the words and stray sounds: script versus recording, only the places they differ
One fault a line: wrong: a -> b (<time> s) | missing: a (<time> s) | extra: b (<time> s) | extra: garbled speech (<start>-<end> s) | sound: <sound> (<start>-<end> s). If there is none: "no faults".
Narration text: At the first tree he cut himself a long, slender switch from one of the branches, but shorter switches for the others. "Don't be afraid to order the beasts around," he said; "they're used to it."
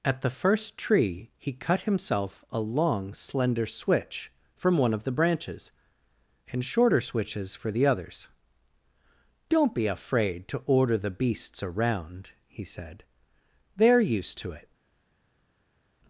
wrong: but -> and (6.5 s)